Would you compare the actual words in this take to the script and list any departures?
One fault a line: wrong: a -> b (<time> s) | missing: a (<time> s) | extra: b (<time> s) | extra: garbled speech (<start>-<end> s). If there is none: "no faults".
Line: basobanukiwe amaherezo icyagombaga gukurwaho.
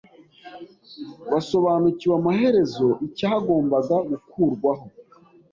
no faults